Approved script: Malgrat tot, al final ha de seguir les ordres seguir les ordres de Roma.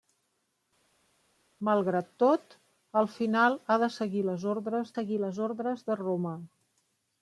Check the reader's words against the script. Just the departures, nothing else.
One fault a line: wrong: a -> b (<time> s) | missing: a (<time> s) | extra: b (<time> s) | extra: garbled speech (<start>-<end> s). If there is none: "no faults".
no faults